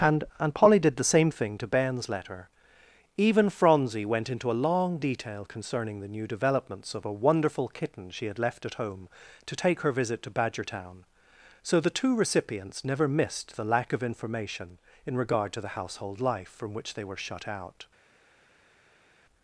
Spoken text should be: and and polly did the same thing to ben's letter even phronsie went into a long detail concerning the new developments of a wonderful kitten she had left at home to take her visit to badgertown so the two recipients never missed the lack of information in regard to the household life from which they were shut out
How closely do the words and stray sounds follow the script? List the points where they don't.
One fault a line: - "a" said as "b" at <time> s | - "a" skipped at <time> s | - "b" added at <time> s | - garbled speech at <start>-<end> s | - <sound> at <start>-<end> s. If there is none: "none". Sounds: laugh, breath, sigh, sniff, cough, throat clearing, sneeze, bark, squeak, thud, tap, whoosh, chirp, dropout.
none